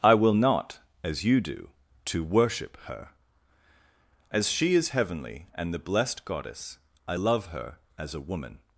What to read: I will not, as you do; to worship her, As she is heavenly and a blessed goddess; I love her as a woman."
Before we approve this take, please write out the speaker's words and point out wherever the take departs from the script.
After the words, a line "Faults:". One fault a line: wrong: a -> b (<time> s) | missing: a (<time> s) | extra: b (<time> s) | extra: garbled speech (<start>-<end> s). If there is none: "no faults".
I will not, as you do; to worship her, As she is heavenly and the blessed goddess; I love her as a woman."
Faults:
wrong: a -> the (5.7 s)